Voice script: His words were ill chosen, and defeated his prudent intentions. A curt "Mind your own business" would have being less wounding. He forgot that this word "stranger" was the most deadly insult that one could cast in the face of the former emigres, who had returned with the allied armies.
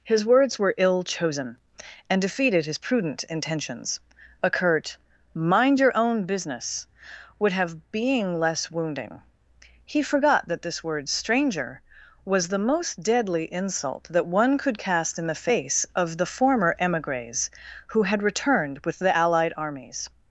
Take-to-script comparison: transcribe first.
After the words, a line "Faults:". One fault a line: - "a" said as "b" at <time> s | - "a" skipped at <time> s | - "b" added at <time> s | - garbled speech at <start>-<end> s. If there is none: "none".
His words were ill chosen, and defeated his prudent intentions. A curt "Mind your own business" would have being less wounding. He forgot that this word "stranger" was the most deadly insult that one could cast in the face of the former emigres, who had returned with the allied armies.
Faults:
none